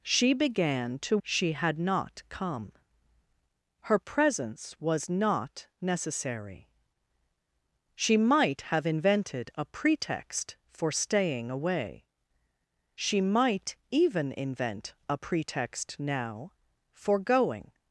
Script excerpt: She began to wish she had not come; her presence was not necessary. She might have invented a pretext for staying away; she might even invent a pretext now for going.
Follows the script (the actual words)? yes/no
no